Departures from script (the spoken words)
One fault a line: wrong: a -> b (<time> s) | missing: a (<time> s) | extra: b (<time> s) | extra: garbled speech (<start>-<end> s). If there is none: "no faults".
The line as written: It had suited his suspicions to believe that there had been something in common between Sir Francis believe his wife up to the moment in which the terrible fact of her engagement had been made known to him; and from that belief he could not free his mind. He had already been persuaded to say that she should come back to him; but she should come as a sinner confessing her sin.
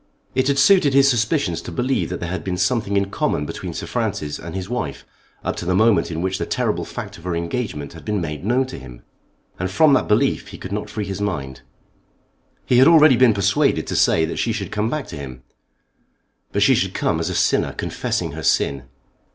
wrong: believe -> and (4.4 s)